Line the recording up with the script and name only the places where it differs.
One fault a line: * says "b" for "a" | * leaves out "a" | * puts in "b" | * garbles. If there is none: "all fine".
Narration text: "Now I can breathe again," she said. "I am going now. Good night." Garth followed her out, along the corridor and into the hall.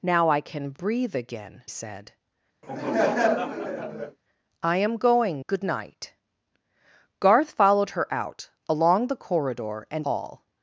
* leaves out "she"
* leaves out "now"
* leaves out "into the"